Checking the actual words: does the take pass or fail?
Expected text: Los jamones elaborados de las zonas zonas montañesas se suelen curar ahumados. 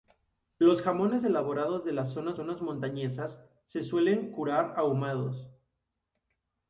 pass